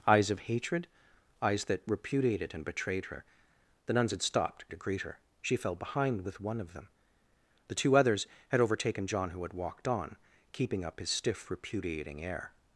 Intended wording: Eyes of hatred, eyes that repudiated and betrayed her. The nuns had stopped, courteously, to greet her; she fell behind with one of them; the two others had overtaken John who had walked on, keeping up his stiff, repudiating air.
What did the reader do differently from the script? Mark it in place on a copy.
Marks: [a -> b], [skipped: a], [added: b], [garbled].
Eyes of hatred, eyes that repudiated and betrayed her. The nuns had stopped, [skipped: courteously,] to greet her; she fell behind with one of them; the two others had overtaken John who had walked on, keeping up his stiff, repudiating air.